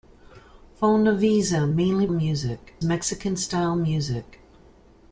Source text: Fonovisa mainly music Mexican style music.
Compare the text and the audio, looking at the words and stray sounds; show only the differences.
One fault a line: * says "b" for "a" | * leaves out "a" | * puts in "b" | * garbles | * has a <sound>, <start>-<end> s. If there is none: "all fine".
all fine